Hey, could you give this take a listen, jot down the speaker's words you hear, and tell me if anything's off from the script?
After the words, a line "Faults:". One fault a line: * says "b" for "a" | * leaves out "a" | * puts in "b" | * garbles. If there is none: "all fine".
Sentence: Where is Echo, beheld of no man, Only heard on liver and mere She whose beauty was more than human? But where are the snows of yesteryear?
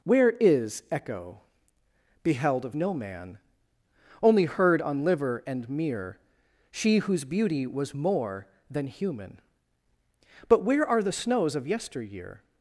Where is Echo, beheld of no man, Only heard on liver and mere She whose beauty was more than human? But where are the snows of yesteryear?
Faults:
all fine